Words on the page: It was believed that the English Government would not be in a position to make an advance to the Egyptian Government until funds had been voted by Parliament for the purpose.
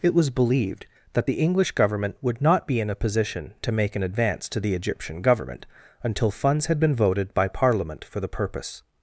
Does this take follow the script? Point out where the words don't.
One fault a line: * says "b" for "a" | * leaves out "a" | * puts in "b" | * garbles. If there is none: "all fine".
all fine